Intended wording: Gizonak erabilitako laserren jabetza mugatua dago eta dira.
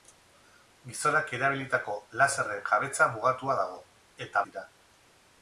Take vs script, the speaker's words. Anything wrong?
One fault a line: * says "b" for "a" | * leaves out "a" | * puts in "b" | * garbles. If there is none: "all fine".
all fine